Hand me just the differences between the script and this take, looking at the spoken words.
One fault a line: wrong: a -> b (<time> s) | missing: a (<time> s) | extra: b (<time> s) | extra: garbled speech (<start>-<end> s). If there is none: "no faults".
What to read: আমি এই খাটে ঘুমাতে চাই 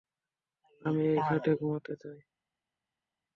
no faults